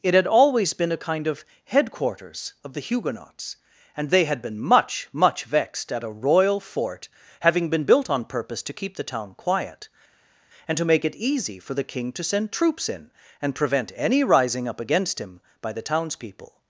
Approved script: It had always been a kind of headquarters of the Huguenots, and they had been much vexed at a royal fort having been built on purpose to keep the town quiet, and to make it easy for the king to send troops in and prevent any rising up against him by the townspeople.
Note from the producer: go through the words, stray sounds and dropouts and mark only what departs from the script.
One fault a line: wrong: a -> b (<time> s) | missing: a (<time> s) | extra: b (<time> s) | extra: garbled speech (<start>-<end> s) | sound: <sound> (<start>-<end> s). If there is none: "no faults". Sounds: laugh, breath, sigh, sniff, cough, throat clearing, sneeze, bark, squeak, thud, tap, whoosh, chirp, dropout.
extra: much (5.1 s)